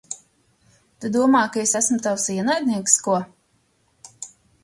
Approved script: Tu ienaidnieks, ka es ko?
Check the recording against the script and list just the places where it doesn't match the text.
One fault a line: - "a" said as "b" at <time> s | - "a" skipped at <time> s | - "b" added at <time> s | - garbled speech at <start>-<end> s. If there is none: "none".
- "ienaidnieks" said as "domā" at 1.1 s
- "esmu tavs ienaidnieks" added at 1.8 s